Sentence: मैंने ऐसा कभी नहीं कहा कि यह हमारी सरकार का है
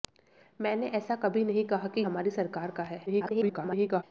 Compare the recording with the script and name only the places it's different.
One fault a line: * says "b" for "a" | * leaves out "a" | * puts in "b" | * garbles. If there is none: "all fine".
* leaves out "यह"
* garbles